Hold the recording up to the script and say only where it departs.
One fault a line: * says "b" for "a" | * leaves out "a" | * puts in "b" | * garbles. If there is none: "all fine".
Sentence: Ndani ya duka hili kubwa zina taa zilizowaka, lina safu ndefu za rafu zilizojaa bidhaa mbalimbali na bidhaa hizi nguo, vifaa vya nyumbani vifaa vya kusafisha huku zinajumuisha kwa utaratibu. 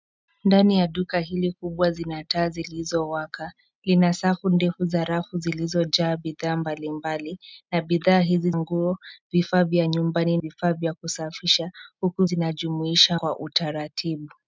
all fine